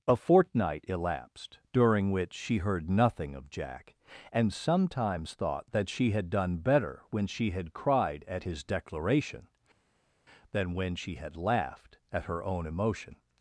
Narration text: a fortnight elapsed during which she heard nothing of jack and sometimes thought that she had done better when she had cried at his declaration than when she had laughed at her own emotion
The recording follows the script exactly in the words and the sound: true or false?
true